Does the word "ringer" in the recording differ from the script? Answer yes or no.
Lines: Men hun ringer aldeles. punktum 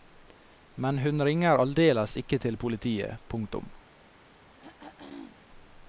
no